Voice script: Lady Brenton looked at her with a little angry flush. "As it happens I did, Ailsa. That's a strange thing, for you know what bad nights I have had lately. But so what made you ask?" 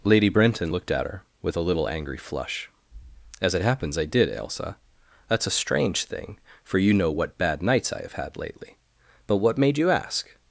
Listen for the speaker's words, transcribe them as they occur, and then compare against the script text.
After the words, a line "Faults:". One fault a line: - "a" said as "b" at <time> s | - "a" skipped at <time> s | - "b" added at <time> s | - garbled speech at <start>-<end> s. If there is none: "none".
Lady Brenton looked at her with a little angry flush. "As it happens I did, Ailsa. That's a strange thing, for you know what bad nights I have had lately. But what made you ask?"
Faults:
- "so" skipped at 9.4 s